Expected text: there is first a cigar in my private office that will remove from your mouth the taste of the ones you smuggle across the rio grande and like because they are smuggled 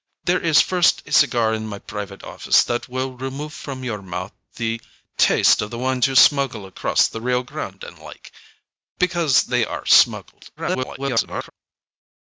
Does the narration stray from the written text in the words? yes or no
yes